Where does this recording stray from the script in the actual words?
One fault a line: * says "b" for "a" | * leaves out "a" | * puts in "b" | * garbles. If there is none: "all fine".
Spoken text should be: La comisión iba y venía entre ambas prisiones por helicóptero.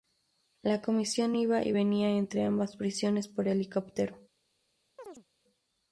all fine